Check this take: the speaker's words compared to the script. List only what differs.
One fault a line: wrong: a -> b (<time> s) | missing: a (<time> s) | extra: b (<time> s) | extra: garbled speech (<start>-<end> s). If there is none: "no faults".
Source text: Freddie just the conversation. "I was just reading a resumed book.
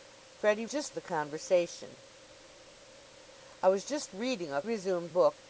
no faults